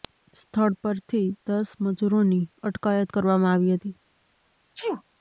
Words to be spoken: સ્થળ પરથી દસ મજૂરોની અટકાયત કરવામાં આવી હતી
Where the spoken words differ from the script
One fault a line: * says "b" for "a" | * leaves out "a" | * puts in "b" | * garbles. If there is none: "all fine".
all fine